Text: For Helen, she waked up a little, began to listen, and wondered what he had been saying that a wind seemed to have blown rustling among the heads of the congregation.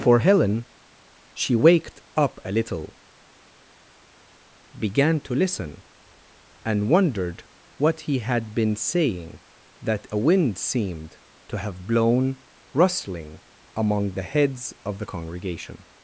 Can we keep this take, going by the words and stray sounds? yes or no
yes